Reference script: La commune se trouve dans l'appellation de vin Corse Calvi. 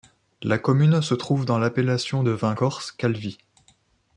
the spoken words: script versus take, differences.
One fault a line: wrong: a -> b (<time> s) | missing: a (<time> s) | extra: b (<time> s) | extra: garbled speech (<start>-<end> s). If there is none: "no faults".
no faults